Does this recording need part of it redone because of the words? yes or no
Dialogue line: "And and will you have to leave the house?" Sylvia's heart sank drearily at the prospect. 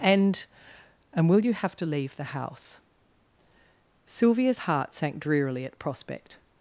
yes